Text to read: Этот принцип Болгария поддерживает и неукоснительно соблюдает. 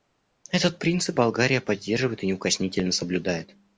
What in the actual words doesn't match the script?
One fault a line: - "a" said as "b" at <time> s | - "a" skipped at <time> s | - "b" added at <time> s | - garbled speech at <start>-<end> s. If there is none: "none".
none